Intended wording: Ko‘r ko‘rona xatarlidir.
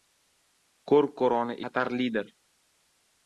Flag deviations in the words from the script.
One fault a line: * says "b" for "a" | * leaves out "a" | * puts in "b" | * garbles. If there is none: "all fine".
all fine